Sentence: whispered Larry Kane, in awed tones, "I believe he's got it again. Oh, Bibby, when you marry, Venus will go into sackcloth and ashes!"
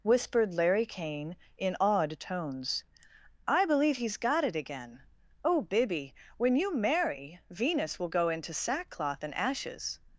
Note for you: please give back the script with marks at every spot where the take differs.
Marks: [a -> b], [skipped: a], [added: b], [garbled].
whispered Larry Kane, in awed tones, "I believe he's got it again. Oh, Bibby, when you marry, Venus will go into sackcloth and ashes!"